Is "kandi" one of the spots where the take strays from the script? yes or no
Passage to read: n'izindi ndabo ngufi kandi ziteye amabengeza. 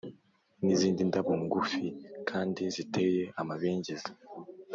no